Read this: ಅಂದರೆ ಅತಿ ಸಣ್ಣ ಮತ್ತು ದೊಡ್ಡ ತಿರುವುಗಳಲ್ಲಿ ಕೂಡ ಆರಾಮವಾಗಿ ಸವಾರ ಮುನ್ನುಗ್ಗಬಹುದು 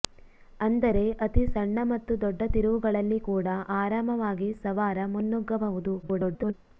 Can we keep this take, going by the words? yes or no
no